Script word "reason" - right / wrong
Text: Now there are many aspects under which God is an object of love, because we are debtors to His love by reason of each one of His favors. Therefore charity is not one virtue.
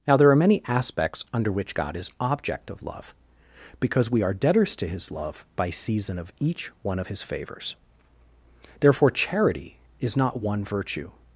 wrong